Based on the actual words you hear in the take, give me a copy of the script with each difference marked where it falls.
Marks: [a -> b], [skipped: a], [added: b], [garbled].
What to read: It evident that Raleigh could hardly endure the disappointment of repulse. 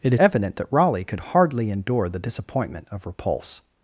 It evident that Raleigh could hardly endure the disappointment of repulse.